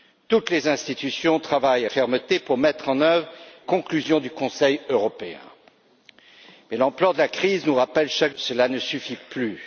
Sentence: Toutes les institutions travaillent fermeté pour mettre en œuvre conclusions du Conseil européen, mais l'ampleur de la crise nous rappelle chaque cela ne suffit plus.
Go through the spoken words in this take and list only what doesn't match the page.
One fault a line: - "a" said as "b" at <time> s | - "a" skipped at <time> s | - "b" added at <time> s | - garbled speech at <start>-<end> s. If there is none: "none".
none